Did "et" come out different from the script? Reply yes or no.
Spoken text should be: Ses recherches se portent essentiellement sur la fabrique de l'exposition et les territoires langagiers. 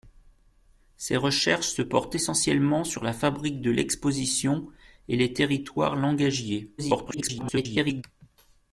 no